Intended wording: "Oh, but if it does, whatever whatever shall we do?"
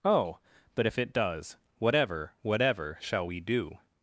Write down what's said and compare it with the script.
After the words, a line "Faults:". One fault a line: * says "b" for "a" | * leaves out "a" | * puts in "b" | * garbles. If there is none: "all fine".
"Oh, but if it does, whatever whatever shall we do?"
Faults:
all fine